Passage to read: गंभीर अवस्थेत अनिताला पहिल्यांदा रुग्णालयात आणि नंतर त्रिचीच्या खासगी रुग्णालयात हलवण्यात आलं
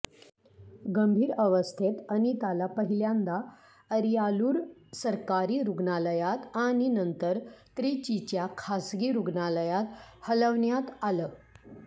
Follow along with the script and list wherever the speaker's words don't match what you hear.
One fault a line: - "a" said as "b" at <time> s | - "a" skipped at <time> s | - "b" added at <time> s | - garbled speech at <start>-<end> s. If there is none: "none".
- "अरियालूर सरकारी" added at 3.9 s